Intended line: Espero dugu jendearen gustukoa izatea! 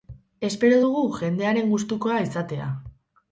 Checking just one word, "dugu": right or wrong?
right